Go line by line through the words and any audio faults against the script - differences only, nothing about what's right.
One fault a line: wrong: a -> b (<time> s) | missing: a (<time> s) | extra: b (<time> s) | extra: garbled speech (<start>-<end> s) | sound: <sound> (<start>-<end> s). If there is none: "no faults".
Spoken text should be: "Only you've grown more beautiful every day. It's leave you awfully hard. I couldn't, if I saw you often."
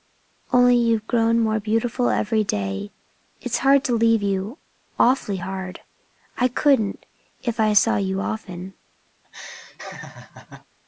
extra: hard to (3.6 s)
sound: laugh (9.2-10.7 s)